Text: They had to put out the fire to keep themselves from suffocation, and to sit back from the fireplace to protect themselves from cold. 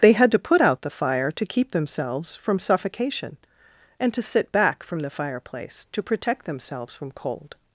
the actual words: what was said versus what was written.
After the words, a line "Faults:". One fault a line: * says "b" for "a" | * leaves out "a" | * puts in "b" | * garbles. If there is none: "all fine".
They had to put out the fire to keep themselves from suffocation, and to sit back from the fireplace to protect themselves from cold.
Faults:
all fine